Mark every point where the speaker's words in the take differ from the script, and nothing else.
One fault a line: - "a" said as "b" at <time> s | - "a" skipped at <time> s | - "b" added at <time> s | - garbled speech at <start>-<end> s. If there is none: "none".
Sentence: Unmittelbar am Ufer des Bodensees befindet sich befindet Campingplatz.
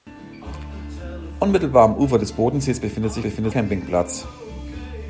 none